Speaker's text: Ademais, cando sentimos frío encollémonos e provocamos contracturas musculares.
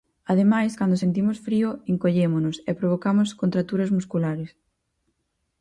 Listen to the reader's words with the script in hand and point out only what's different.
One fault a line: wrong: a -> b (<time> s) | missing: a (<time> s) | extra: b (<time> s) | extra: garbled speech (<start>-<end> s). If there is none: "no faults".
no faults